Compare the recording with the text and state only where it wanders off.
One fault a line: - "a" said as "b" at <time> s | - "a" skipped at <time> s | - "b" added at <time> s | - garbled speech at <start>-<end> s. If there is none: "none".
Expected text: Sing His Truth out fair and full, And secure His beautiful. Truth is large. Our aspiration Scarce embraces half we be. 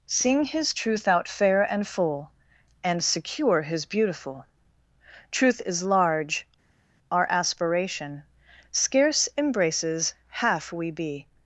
none